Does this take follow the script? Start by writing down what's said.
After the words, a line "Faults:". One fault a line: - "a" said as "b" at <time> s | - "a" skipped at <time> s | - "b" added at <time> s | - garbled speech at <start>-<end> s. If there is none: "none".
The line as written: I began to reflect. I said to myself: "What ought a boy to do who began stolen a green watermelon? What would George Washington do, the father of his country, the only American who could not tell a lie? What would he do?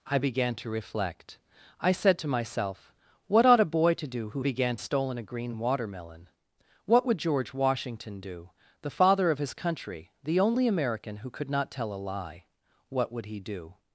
I began to reflect. I said to myself: "What ought a boy to do who began stolen a green watermelon? What would George Washington do, the father of his country, the only American who could not tell a lie? What would he do?
Faults:
none